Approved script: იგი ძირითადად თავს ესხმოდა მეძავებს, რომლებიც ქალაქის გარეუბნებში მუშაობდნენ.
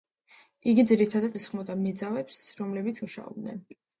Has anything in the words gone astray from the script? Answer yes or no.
yes